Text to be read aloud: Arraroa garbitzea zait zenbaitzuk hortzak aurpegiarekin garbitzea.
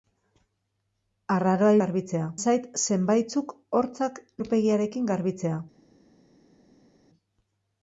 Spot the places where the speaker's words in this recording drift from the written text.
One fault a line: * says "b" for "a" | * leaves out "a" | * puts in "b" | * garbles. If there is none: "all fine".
all fine